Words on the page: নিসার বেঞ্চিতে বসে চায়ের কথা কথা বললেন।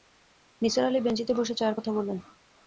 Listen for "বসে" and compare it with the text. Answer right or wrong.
right